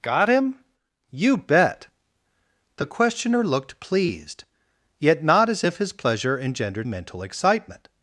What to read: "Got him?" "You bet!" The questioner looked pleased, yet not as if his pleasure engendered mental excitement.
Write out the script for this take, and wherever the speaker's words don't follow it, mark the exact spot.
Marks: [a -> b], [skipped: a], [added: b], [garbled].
"Got him?" "You bet!" The questioner looked pleased, yet not as if his pleasure engendered mental excitement.